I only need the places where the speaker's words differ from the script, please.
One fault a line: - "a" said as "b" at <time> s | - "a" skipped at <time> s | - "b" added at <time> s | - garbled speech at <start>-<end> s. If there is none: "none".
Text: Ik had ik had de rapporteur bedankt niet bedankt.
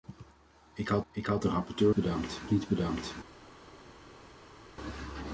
none